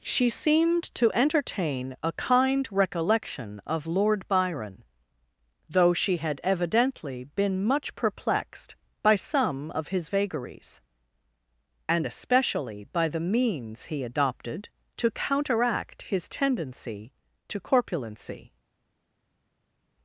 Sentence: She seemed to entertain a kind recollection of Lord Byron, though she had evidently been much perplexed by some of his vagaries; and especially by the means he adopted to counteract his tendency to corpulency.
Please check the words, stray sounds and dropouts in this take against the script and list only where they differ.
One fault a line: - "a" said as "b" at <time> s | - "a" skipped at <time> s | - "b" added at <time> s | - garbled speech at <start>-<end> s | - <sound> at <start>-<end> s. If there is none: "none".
none